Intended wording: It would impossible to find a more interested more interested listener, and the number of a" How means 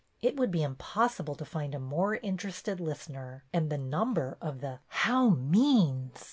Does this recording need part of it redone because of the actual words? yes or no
yes